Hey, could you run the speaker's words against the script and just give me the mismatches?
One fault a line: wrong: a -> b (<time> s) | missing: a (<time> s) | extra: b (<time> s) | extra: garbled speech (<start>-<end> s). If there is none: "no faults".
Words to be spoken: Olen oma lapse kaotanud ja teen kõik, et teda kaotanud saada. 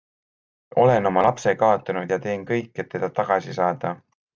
wrong: kaotanud -> tagasi (3.2 s)